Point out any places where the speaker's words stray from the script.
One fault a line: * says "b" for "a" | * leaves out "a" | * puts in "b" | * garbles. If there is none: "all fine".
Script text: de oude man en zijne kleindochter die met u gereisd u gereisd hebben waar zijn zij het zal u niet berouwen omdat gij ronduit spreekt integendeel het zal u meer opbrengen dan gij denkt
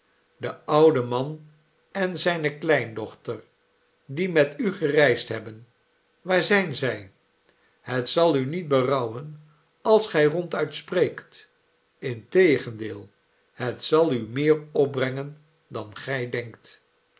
* leaves out "u gereisd"
* says "als" for "omdat"